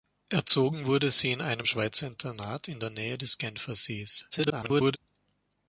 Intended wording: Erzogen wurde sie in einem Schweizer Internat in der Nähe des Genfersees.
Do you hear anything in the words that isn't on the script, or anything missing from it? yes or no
yes